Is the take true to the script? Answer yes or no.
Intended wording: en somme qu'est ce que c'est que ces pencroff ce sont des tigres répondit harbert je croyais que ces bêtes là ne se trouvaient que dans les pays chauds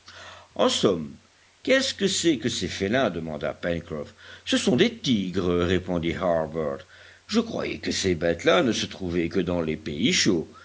no